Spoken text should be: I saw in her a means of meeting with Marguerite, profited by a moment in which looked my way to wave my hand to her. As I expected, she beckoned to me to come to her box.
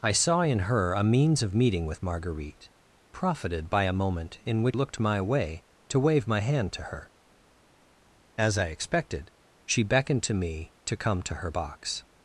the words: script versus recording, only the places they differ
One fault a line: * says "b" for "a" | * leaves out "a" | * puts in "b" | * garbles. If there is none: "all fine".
all fine